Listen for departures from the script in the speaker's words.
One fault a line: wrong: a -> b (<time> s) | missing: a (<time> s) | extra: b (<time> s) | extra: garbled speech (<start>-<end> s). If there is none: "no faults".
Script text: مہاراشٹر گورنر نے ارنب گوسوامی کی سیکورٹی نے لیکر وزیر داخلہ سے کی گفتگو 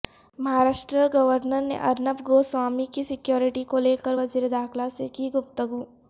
wrong: نے -> کو (3.7 s)